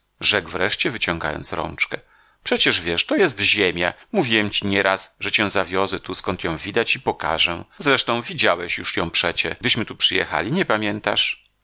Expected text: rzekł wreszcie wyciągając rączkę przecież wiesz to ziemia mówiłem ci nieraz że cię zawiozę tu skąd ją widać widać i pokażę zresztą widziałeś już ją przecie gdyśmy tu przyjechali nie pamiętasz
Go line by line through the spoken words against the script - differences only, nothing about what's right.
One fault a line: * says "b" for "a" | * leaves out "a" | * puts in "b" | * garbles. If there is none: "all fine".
* puts in "jest"
* leaves out "widać"